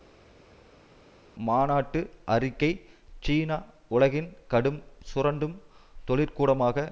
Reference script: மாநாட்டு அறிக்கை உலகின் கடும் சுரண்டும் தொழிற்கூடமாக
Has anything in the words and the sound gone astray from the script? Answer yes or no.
yes